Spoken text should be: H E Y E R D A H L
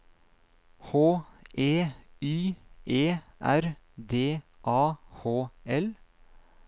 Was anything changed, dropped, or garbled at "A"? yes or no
no